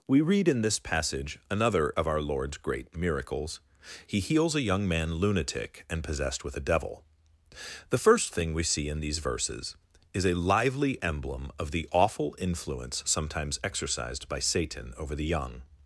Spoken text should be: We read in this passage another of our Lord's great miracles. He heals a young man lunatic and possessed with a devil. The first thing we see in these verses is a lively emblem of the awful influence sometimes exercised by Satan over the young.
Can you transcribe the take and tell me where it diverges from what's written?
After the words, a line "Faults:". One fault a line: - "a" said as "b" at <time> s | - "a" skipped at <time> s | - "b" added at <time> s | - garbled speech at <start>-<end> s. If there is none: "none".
We read in this passage another of our Lord's great miracles. He heals a young man lunatic and possessed with a devil. The first thing we see in these verses is a lively emblem of the awful influence sometimes exercised by Satan over the young.
Faults:
none